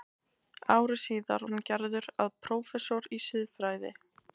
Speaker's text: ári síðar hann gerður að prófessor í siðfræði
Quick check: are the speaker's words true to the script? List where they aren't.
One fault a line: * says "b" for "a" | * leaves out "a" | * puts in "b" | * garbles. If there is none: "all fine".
all fine